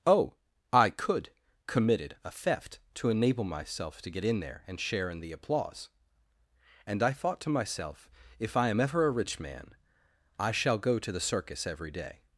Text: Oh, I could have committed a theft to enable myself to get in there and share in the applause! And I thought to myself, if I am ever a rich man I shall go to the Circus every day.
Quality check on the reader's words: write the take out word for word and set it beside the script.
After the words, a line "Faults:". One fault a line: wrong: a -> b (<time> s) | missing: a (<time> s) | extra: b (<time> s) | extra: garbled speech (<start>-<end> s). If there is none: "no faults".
Oh, I could committed a theft to enable myself to get in there and share in the applause! And I thought to myself, if I am ever a rich man I shall go to the Circus every day.
Faults:
missing: have (1.3 s)